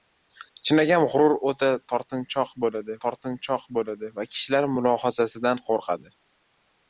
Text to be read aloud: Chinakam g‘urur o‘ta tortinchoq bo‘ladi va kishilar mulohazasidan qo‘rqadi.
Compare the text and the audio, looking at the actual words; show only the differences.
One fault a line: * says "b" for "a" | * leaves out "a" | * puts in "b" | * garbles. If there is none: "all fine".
* puts in "tortinchoq bo‘ladi"